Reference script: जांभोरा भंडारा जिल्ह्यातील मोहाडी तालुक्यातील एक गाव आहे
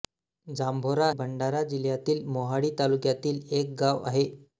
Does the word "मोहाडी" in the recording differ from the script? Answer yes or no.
no